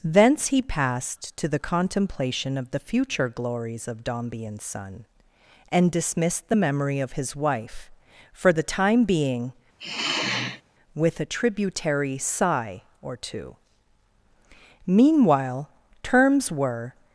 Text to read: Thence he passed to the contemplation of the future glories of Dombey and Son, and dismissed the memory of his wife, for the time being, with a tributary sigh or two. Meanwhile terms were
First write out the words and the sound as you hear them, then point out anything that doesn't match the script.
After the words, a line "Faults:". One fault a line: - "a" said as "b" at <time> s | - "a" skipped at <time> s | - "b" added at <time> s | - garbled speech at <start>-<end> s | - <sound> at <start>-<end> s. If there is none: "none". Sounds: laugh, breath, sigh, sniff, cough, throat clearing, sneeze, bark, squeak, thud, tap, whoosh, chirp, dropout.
Thence he passed to the contemplation of the future glories of Dombey and Son, and dismissed the memory of his wife, for the time being, with a tributary sigh or two. Meanwhile terms were
Faults:
- sigh at 9.8-10.6 s